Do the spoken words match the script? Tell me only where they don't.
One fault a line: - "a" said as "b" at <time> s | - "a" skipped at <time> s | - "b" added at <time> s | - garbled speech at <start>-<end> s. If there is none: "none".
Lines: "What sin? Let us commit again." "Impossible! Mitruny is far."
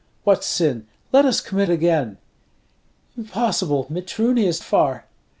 none